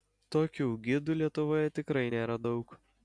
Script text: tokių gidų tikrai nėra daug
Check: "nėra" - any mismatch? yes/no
no